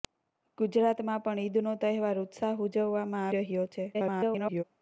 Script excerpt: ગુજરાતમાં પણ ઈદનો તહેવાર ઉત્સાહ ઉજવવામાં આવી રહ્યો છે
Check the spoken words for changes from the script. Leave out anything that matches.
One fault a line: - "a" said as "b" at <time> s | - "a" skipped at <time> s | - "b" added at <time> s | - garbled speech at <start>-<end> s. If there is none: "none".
- "આવી" skipped at 3.3 s
- garbled speech at 3.9-4.6 s